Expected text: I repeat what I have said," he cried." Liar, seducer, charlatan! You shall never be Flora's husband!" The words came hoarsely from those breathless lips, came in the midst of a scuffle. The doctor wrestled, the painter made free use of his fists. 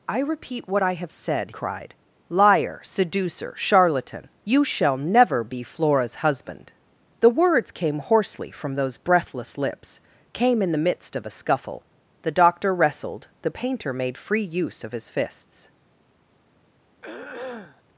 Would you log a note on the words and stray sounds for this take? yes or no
yes